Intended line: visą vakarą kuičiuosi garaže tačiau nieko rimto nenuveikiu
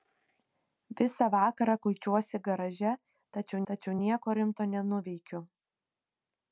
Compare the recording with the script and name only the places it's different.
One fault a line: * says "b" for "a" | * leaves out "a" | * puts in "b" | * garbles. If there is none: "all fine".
* puts in "tačiau"